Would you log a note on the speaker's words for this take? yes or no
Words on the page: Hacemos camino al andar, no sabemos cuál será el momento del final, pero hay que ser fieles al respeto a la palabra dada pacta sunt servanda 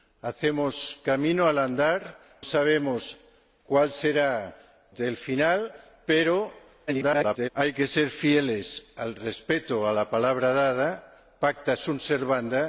yes